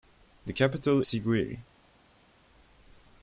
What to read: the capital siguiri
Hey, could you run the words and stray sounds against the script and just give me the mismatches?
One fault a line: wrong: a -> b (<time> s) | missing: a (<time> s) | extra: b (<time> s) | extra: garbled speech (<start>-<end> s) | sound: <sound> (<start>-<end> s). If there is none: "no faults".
no faults